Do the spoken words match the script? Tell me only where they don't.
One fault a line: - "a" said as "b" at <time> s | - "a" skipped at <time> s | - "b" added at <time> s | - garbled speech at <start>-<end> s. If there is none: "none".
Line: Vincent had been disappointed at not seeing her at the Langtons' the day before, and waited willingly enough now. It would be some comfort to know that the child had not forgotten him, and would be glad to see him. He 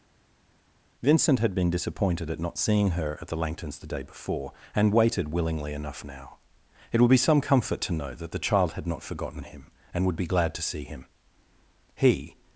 none